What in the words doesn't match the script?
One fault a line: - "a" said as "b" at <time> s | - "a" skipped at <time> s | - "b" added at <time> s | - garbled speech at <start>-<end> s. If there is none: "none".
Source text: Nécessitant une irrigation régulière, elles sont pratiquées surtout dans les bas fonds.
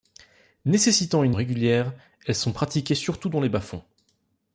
- "irrigation" skipped at 1.4 s